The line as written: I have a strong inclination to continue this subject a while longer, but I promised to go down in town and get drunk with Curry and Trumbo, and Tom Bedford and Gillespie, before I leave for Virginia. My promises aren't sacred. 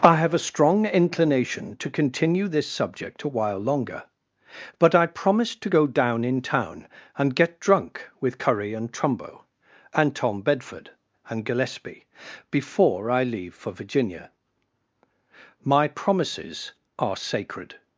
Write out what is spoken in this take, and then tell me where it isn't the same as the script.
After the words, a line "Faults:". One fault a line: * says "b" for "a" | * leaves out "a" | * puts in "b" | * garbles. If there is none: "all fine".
I have a strong inclination to continue this subject a while longer, but I promised to go down in town and get drunk with Curry and Trumbo, and Tom Bedford and Gillespie, before I leave for Virginia. My promises are sacred.
Faults:
* says "are" for "aren't"